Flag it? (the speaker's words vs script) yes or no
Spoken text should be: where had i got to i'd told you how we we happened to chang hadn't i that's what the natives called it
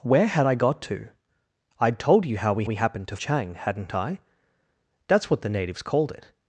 no